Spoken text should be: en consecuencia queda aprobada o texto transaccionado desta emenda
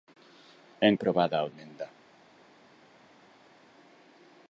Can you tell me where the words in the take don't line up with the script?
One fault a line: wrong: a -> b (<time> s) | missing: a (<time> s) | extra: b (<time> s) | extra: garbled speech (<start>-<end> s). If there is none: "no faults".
missing: consecuencia queda (0.9 s)
missing: texto transaccionado desta (1.5 s)